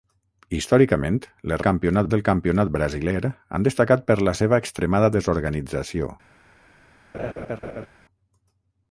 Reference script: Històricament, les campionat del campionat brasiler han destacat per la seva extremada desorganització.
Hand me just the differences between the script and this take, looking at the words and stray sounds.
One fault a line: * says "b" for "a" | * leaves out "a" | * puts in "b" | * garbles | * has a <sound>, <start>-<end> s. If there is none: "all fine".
* has a laugh, 7.1-7.9 s